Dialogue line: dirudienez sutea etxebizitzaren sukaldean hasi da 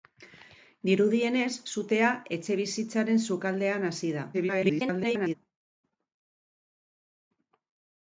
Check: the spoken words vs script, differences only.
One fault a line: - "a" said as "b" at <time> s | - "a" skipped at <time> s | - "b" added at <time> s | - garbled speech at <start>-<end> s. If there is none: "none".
- garbled speech at 4.3-5.3 s